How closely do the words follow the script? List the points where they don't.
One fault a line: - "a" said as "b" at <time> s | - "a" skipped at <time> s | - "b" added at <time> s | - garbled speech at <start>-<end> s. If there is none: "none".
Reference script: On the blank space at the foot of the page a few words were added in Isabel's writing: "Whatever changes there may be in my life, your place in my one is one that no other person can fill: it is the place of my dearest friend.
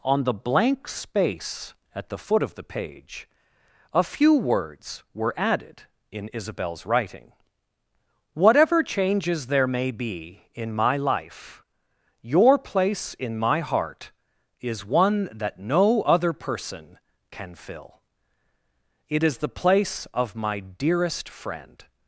- "one" said as "heart" at 13.6 s